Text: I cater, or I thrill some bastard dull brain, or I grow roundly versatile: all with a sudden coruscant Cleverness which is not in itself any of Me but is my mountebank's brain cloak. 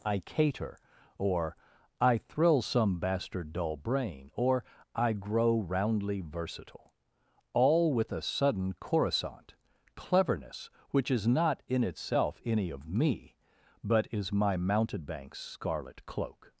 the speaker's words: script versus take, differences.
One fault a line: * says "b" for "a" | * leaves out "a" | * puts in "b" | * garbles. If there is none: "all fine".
* says "scarlet" for "brain"